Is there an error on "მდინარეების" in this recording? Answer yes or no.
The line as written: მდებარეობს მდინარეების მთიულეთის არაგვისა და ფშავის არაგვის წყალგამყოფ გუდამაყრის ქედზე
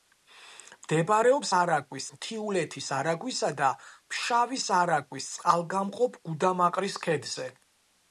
yes